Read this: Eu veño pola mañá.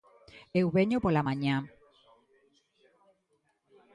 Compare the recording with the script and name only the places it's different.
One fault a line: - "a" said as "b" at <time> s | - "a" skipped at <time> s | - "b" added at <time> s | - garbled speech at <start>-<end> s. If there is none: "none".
none